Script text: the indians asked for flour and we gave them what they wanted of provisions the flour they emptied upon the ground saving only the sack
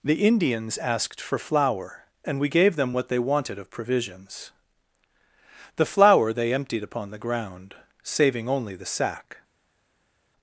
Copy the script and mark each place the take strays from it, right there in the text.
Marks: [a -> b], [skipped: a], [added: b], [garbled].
the indians asked for flour and we gave them what they wanted of provisions the flour they emptied upon the ground saving only the sack